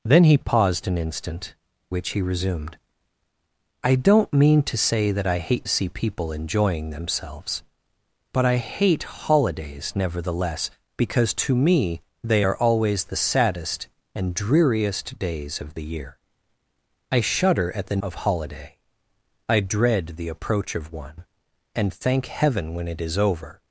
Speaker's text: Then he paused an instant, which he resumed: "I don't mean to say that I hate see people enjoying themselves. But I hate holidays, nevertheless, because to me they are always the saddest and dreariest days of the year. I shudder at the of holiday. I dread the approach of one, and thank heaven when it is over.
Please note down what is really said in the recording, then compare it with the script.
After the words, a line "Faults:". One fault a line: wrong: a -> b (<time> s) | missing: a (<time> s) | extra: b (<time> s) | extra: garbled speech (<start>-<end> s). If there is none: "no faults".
Then he paused an instant, which he resumed: "I don't mean to say that I hate see people enjoying themselves. But I hate holidays, nevertheless, because to me they are always the saddest and dreariest days of the year. I shudder at the of holiday. I dread the approach of one, and thank heaven when it is over.
Faults:
no faults